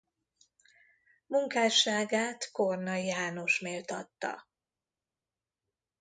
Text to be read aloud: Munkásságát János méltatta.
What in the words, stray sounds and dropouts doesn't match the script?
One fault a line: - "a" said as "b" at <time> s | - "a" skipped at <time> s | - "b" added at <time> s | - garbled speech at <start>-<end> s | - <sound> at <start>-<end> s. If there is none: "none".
- "Kornai" added at 2.5 s